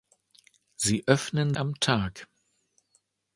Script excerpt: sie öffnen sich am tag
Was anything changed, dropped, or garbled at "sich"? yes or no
yes